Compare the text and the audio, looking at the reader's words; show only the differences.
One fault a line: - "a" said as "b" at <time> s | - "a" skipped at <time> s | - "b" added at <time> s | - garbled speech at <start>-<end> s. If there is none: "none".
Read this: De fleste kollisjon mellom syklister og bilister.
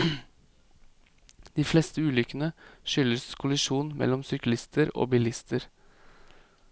- "ulykkene skyldes" added at 2.0 s